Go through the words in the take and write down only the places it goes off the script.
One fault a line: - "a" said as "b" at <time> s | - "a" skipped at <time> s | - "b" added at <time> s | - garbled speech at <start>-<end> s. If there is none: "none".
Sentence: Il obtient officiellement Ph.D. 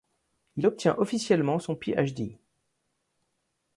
- "son" added at 1.6 s